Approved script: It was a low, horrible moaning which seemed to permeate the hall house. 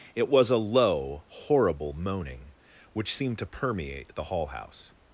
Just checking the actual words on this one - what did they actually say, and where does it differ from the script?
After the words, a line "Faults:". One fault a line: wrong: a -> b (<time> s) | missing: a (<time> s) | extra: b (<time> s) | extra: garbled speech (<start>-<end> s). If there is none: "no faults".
It was a low, horrible moaning which seemed to permeate the hall house.
Faults:
no faults